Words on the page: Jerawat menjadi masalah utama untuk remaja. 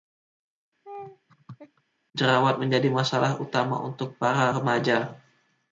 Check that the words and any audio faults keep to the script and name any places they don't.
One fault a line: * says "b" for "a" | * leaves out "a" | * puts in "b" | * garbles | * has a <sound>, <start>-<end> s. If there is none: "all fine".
* has a laugh, 0.8-1.8 s
* puts in "para"